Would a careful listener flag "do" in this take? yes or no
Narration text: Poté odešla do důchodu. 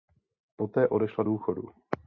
yes